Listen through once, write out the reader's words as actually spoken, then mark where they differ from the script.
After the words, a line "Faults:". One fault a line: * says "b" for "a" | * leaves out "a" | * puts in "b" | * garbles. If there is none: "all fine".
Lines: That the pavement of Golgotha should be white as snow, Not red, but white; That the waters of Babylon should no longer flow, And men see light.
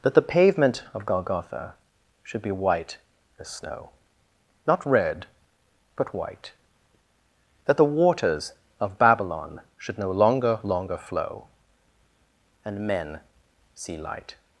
That the pavement of Golgotha should be white as snow, Not red, but white; That the waters of Babylon should no longer longer flow, And men see light.
Faults:
* puts in "longer"